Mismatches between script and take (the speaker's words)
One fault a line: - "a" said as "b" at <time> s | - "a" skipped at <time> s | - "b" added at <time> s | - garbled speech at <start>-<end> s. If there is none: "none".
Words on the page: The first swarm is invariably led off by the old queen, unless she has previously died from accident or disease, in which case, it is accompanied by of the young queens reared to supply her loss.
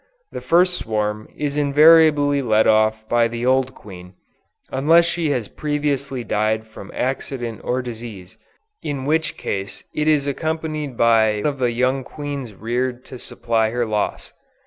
none